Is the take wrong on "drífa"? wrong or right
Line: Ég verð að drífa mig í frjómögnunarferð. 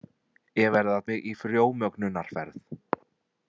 wrong